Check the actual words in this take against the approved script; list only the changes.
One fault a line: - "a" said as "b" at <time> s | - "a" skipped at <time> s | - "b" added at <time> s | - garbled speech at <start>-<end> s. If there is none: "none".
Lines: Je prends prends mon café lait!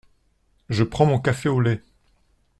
- "prends" skipped at 1.1 s
- "au" added at 1.5 s